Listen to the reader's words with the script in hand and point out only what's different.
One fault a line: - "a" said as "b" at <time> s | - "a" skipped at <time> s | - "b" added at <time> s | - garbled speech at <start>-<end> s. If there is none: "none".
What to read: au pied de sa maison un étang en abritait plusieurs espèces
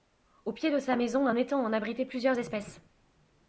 none